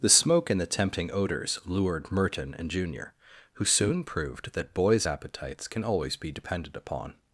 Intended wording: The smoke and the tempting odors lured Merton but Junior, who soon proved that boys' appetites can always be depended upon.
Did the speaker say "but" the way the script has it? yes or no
no